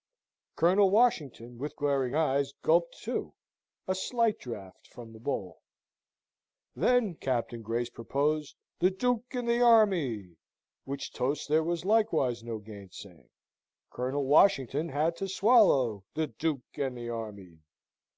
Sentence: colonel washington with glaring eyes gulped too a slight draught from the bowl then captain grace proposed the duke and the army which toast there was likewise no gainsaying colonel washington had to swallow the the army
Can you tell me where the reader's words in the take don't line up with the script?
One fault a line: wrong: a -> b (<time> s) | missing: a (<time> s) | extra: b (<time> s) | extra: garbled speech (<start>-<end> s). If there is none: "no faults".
extra: duke and (16.3 s)